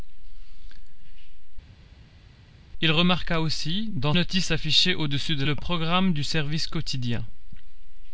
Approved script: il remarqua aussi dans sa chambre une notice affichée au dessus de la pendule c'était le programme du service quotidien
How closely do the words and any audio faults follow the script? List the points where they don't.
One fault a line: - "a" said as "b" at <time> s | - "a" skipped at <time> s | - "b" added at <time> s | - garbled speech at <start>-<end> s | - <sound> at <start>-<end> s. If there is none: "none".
- "sa chambre une" skipped at 4.1 s
- "la pendule c'était" skipped at 5.4 s